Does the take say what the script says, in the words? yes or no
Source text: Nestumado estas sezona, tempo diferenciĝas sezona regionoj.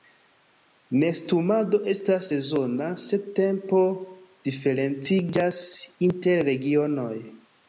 no